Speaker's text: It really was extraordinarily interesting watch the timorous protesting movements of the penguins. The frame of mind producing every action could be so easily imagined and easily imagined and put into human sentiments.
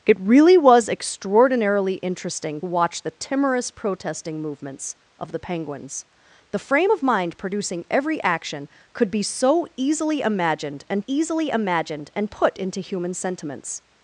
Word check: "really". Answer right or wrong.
right